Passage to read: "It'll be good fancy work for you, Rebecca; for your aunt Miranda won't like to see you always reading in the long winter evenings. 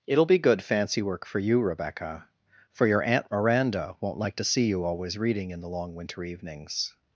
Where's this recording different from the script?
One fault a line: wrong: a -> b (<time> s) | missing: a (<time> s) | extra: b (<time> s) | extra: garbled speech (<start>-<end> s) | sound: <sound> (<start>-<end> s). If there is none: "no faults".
no faults